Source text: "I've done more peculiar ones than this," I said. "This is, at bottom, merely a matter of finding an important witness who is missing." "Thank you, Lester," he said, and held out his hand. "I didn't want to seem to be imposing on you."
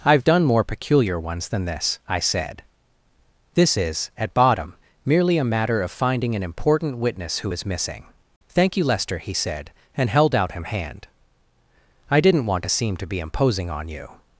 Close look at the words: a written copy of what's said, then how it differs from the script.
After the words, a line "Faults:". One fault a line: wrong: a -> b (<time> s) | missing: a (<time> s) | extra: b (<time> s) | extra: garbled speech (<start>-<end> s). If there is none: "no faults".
"I've done more peculiar ones than this," I said. "This is, at bottom, merely a matter of finding an important witness who is missing." "Thank you, Lester," he said, and held out him hand. "I didn't want to seem to be imposing on you."
Faults:
wrong: his -> him (10.5 s)